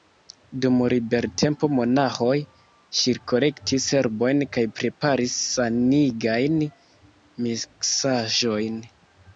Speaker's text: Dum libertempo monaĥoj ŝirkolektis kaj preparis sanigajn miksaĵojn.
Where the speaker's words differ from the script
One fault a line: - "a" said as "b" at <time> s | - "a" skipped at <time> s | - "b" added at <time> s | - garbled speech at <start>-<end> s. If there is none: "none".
- "herbojn" added at 4.0 s